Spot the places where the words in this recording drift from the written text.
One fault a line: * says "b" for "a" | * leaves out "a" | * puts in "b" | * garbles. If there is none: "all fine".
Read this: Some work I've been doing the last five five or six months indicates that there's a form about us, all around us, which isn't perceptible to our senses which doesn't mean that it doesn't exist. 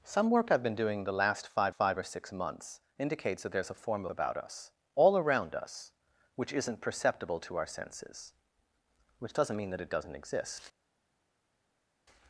all fine